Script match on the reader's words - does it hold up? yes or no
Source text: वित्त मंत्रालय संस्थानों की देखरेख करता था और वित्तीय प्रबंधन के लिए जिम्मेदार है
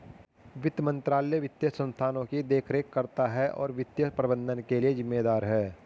no